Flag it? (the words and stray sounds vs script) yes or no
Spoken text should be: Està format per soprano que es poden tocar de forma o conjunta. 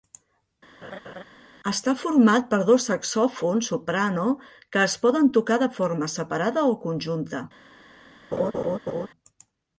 yes